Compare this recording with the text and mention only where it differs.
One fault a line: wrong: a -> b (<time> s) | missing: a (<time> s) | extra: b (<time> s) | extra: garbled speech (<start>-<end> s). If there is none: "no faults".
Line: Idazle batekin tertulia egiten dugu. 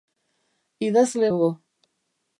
missing: batekin tertulia egiten (1.3 s)